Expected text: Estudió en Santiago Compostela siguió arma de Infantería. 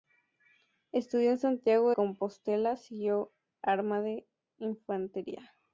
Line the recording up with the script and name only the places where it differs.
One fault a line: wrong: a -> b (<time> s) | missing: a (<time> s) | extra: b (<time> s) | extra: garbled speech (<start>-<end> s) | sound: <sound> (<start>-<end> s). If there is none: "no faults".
no faults